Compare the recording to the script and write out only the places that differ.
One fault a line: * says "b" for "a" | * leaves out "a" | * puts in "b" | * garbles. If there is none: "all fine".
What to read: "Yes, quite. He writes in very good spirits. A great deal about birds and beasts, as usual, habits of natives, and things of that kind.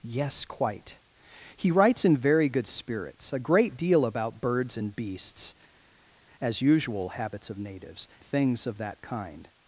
* leaves out "and"